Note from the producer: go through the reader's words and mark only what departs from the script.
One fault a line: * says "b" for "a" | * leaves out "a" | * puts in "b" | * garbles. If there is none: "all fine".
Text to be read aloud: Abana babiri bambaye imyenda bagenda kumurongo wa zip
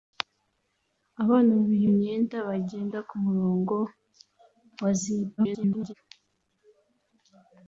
* leaves out "bambaye"
* garbles